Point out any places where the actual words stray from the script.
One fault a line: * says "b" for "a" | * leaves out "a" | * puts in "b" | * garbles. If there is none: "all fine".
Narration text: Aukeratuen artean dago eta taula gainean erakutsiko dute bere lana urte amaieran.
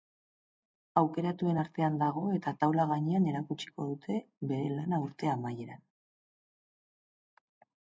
all fine